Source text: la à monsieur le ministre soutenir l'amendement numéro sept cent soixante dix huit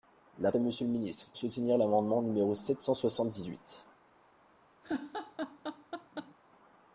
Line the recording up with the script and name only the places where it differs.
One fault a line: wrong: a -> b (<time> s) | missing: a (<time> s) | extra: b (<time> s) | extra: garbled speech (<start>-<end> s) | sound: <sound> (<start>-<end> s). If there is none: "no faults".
sound: laugh (4.8-6.3 s)